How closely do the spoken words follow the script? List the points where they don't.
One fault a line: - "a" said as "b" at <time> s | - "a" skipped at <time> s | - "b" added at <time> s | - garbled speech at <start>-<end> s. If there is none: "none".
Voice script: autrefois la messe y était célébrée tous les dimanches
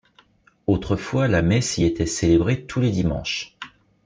none